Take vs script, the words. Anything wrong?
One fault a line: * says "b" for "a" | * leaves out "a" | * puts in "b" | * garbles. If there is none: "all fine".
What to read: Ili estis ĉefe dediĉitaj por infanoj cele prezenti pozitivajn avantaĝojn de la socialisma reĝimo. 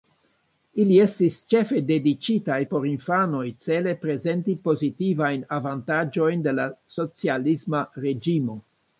all fine